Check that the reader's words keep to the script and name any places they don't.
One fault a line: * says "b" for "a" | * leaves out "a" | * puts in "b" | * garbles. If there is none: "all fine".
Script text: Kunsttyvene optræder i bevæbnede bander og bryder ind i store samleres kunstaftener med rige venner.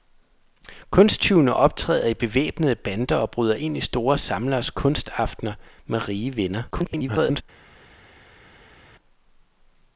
* garbles